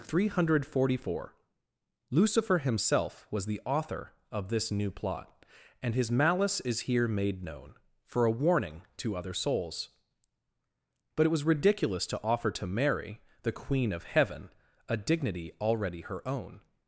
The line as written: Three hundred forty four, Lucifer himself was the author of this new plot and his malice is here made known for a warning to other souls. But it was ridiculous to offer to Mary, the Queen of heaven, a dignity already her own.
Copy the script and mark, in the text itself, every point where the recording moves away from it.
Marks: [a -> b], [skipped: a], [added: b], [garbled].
Three hundred forty four, Lucifer himself was the author of this new plot and his malice is here made known for a warning to other souls. But it was ridiculous to offer to Mary, the Queen of heaven, a dignity already her own.